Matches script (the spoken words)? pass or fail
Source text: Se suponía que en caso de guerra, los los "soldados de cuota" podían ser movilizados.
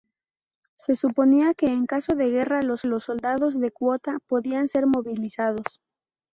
pass